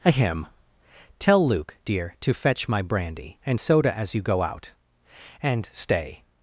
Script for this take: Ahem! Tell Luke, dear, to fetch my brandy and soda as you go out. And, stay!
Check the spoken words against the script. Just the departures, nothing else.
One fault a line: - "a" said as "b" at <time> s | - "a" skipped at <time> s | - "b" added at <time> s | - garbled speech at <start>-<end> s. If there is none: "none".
none